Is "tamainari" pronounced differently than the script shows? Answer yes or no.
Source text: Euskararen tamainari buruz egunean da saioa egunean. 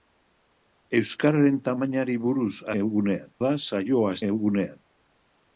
no